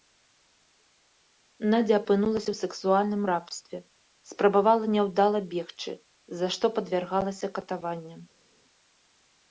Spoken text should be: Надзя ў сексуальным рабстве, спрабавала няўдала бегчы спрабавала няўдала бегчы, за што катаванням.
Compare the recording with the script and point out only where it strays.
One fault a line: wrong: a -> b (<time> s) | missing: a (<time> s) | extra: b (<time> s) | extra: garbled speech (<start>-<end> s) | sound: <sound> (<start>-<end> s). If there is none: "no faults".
extra: апынулася (2.0 s)
missing: спрабавала няўдала бегчы (5.9 s)
extra: падвяргалася (6.8 s)